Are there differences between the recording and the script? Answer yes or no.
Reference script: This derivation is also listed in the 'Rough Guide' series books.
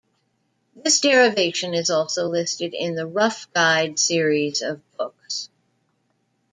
yes